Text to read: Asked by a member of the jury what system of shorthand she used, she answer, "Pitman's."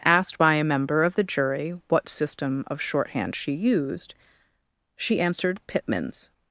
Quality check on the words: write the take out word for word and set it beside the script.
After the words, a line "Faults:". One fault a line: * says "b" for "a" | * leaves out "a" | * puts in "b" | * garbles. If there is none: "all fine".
Asked by a member of the jury what system of shorthand she used, she answered, "Pitman's."
Faults:
* says "answered" for "answer"